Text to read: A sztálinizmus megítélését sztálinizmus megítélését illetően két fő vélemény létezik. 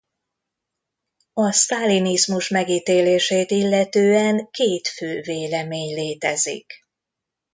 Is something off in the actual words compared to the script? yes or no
yes